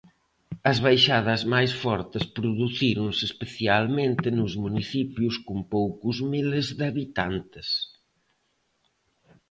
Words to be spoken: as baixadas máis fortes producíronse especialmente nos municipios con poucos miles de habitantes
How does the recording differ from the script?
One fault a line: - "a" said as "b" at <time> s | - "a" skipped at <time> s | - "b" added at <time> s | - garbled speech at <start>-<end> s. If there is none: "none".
none